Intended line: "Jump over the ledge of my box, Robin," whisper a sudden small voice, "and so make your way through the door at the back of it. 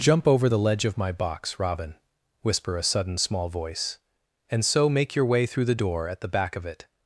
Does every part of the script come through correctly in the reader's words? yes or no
yes